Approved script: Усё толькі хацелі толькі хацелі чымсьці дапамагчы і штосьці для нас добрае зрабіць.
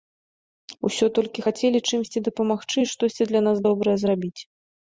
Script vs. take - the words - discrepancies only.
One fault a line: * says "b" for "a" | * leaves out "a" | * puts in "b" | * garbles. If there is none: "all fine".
* leaves out "толькі хацелі"